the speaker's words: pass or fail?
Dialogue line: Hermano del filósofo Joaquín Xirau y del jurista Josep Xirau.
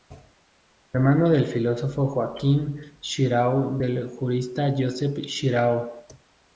pass